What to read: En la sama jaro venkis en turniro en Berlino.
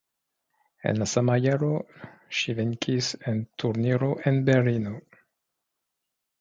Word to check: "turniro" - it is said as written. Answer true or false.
true